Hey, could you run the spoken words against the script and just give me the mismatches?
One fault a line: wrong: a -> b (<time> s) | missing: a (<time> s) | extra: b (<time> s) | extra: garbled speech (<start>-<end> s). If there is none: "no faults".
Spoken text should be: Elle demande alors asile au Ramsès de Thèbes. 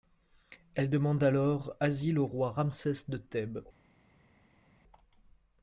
extra: roi (2.2 s)